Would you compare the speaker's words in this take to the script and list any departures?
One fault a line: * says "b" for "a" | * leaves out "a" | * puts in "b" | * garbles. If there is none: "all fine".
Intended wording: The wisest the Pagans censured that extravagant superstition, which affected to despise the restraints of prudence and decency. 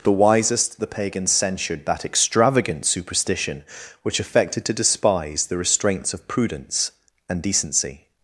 all fine